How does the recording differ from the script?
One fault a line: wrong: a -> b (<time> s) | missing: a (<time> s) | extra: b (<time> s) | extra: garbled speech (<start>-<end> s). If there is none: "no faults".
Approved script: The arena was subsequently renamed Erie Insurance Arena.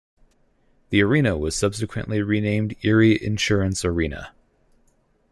no faults